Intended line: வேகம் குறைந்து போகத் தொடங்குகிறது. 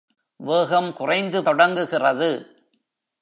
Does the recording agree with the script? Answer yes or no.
no